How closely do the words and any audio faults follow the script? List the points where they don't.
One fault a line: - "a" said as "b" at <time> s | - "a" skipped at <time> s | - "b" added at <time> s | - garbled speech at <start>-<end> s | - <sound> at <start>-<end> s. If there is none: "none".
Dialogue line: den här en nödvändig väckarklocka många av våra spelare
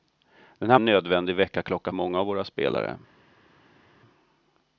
none